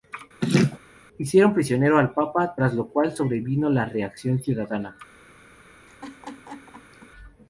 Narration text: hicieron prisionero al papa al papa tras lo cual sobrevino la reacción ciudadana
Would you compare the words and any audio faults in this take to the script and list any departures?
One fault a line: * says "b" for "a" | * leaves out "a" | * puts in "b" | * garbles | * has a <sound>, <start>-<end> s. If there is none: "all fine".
* has a laugh, 0.4-0.8 s
* leaves out "al papa"
* has a laugh, 5.9-7.1 s